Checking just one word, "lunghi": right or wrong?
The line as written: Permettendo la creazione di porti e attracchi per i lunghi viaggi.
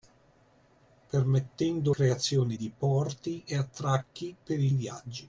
wrong